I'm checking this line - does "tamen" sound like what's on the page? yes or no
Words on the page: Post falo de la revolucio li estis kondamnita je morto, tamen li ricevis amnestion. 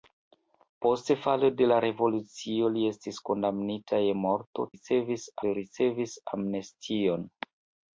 no